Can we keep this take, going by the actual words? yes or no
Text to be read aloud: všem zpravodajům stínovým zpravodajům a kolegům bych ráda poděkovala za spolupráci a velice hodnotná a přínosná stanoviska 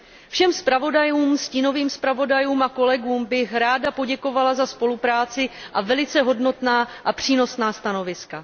yes